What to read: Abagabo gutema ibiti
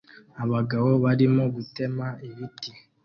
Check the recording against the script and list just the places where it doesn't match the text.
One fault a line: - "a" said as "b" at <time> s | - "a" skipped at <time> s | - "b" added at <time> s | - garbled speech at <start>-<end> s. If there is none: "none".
- "barimo" added at 1.0 s